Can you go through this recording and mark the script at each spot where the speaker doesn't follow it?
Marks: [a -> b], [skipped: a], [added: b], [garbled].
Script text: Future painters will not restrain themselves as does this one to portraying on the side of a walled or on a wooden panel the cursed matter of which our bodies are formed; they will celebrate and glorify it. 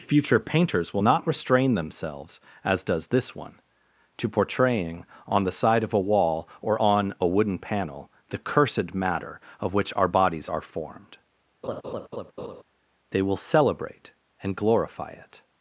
Future painters will not restrain themselves as does this one to portraying on the side of a [walled -> wall] or on a wooden panel the cursed matter of which our bodies are formed; they will celebrate and glorify it.